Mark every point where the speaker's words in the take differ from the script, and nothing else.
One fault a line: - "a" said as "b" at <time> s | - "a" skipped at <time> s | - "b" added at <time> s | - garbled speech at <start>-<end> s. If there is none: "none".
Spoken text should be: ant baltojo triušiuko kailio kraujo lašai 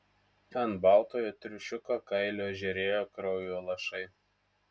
- "žėrėjo" added at 2.6 s